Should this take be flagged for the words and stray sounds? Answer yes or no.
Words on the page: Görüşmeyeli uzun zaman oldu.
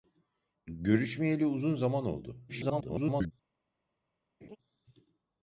yes